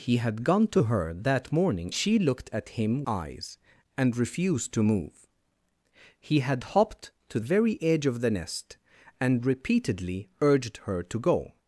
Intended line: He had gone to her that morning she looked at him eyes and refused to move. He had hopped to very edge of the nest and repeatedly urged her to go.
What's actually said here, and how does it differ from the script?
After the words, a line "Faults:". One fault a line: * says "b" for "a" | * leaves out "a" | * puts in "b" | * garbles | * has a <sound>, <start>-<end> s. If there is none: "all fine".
He had gone to her that morning she looked at him eyes and refused to move. He had hopped to very edge of the nest and repeatedly urged her to go.
Faults:
all fine